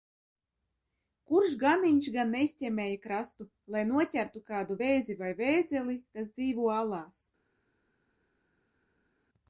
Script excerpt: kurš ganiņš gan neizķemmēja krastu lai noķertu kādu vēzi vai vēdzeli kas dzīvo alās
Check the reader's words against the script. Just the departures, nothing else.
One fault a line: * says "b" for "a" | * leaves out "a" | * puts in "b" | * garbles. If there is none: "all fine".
all fine